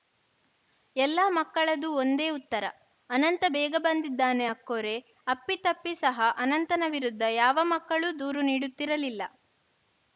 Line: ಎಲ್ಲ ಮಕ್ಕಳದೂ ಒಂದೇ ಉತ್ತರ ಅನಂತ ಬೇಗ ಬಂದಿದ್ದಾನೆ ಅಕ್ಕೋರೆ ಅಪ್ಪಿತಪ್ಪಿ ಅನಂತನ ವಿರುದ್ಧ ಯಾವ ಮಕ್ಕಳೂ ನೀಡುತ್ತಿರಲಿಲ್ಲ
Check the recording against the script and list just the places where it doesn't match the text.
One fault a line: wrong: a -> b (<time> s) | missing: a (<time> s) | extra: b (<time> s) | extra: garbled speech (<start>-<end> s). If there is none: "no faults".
extra: ಸಹ (6.0 s)
extra: ದೂರು (8.2 s)